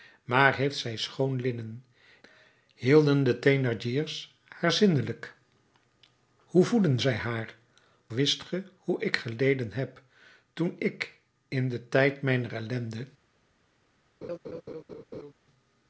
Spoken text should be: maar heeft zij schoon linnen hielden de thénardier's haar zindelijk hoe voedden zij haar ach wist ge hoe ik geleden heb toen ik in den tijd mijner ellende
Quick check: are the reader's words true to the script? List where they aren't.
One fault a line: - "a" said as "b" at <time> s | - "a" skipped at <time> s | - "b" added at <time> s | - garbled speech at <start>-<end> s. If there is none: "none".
- "ach" skipped at 7.5 s